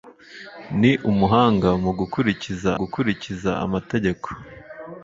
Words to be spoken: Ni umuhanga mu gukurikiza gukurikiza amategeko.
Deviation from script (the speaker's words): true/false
false